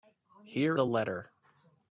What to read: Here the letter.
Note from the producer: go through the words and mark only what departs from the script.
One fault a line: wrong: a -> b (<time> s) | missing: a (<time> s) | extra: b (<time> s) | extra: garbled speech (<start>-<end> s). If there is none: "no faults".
no faults